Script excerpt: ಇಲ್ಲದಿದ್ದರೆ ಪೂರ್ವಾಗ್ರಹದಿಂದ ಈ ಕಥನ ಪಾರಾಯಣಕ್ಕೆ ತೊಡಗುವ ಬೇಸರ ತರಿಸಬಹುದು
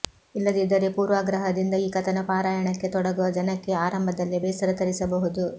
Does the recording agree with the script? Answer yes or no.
no